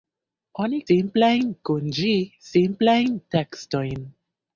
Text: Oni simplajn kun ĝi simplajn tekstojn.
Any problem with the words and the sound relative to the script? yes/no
no